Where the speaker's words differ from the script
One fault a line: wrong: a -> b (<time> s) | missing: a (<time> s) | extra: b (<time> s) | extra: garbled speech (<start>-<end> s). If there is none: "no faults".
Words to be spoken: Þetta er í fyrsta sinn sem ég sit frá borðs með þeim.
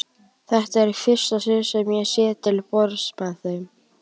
wrong: frá -> til (2.5 s)